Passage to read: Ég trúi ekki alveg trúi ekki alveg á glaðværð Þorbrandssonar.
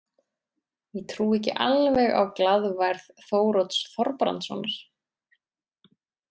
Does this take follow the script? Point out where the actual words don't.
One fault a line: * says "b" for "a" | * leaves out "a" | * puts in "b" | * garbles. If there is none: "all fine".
* leaves out "trúi ekki alveg"
* puts in "Þórodds"